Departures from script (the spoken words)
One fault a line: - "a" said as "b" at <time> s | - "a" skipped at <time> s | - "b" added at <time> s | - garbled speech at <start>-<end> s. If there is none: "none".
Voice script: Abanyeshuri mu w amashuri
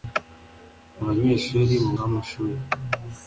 none